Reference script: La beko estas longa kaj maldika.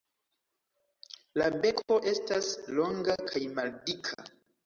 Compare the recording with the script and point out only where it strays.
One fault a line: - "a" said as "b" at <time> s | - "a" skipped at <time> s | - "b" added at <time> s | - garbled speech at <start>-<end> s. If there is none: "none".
none